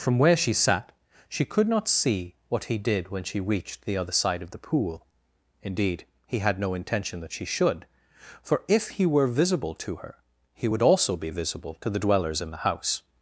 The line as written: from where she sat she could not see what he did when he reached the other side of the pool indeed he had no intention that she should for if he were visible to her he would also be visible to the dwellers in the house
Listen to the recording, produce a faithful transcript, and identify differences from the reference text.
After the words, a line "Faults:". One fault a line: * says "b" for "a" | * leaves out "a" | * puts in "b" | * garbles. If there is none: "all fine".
from where she sat she could not see what he did when she reached the other side of the pool indeed he had no intention that she should for if he were visible to her he would also be visible to the dwellers in the house
Faults:
* says "she" for "he"